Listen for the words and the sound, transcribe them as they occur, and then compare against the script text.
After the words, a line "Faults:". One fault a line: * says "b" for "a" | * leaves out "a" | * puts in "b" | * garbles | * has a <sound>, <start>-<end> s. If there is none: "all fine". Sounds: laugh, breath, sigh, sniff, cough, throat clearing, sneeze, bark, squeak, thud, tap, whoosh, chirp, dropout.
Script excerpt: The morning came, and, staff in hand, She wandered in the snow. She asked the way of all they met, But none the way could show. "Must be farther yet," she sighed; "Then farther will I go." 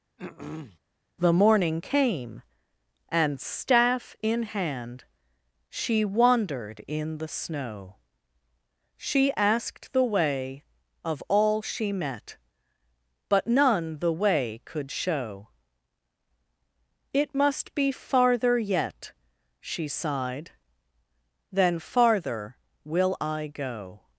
The morning came, and, staff in hand, She wandered in the snow. She asked the way of all she met, But none the way could show. "It must be farther yet," she sighed; "Then farther will I go."
Faults:
* has a throat clearing, 0.2-0.8 s
* says "she" for "they"
* puts in "It"